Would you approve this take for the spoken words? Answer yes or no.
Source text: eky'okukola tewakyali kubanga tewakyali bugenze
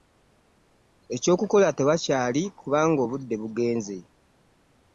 no